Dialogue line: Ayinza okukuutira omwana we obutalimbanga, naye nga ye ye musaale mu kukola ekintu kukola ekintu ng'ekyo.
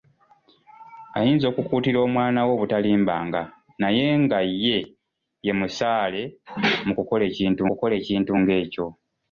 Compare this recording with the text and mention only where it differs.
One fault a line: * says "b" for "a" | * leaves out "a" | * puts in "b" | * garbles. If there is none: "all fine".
all fine